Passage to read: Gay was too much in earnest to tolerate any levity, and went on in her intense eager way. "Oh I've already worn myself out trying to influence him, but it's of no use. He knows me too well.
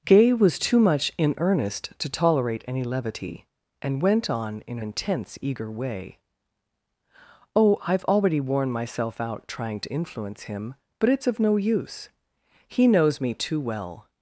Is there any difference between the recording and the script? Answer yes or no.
yes